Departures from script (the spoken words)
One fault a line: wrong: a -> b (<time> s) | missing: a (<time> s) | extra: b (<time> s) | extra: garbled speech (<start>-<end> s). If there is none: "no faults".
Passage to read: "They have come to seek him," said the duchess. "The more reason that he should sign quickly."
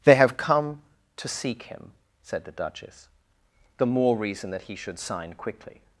no faults